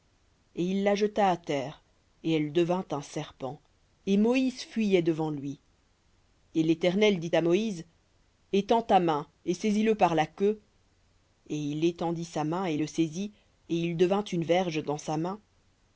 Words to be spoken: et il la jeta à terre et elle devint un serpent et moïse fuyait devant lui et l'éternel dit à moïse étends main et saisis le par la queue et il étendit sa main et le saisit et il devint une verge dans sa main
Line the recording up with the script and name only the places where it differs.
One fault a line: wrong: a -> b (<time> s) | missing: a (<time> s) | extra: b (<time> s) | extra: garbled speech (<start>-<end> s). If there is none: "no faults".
extra: ta (8.8 s)